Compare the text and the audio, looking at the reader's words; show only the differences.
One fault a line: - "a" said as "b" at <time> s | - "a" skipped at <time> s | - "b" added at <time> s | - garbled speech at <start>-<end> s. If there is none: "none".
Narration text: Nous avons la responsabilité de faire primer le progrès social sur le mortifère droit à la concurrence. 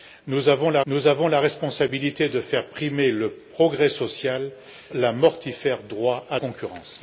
- "nous avons la" added at 0.9 s
- "sur" skipped at 4.5 s
- "la" skipped at 6.4 s